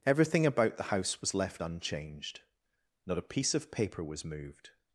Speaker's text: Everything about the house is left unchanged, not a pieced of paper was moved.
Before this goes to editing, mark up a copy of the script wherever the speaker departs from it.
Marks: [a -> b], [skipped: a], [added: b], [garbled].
Everything about the house [is -> was] left unchanged, not a [pieced -> piece] of paper was moved.